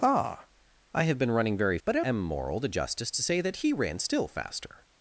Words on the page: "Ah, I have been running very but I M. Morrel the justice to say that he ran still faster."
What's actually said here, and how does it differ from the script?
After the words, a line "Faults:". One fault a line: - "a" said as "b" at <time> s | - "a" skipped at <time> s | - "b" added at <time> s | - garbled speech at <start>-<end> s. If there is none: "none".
"Ah, I have been running very but I M. Morrel the justice to say that he ran still faster."
Faults:
none